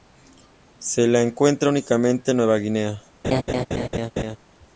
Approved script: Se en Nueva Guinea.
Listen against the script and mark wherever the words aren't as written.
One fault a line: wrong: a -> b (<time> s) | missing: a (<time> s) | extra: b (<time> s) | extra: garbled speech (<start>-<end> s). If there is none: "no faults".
extra: la encuentra únicamente (1.1 s)